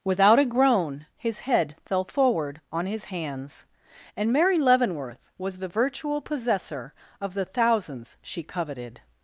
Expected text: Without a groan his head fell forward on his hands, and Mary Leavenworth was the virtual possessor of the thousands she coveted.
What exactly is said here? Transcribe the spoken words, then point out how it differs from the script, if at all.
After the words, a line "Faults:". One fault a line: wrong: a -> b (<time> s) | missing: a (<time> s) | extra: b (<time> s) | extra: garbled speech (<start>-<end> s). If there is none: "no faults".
Without a groan his head fell forward on his hands, and Mary Leavenworth was the virtual possessor of the thousands she coveted.
Faults:
no faults